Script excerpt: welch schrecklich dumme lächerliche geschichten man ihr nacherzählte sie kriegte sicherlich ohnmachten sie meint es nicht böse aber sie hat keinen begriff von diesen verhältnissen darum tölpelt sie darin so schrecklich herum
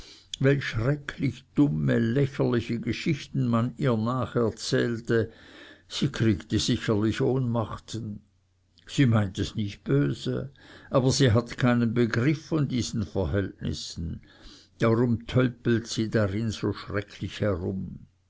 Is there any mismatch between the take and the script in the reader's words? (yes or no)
no